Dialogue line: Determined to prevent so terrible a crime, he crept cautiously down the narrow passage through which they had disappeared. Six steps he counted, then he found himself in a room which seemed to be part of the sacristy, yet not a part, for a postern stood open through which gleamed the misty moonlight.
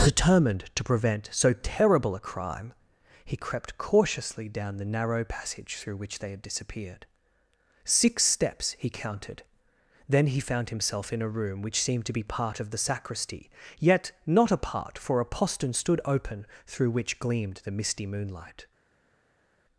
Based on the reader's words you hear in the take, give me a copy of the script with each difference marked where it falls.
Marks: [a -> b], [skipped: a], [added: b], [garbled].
Determined to prevent so terrible a crime, he crept cautiously down the narrow passage through which they had disappeared. Six steps he counted, then he found himself in a room which seemed to be part of the sacristy, yet not a part, for a postern stood open through which gleamed the misty moonlight.